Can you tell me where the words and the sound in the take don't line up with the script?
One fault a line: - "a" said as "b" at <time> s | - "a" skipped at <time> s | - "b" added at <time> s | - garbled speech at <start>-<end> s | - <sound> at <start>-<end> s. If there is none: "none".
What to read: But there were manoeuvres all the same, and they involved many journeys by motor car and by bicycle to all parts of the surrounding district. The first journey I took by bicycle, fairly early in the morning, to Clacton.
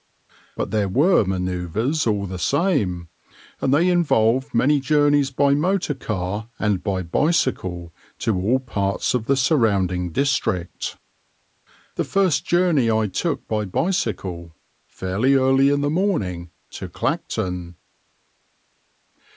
none